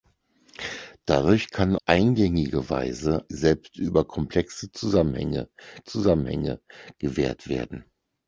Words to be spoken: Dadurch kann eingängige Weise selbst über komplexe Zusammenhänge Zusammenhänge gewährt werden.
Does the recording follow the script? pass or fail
pass